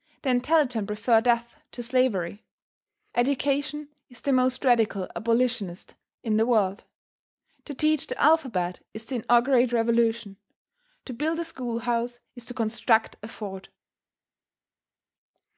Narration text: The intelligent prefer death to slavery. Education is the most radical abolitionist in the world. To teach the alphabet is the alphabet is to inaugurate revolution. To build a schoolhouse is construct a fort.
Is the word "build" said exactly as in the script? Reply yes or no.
yes